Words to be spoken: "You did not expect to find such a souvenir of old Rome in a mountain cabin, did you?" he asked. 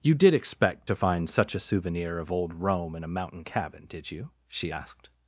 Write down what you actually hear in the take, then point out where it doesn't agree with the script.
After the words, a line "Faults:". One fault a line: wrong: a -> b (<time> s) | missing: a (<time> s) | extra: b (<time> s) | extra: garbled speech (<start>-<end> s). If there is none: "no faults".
"You did expect to find such a souvenir of old Rome in a mountain cabin, did you?" she asked.
Faults:
missing: not (0.3 s)
wrong: he -> she (4.5 s)